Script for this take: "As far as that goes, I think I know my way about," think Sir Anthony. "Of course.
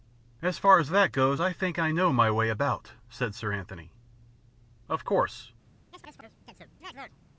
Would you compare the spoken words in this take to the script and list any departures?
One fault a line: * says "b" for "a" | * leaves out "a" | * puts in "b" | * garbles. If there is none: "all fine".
* says "said" for "think"